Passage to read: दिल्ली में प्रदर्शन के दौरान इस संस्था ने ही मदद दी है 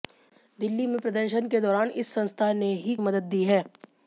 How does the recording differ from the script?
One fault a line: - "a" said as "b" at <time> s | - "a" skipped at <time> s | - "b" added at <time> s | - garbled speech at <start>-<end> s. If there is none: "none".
none